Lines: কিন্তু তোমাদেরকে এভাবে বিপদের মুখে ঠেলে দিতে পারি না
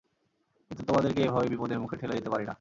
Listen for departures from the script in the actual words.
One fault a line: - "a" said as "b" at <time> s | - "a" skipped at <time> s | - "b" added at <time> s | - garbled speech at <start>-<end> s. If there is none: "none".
none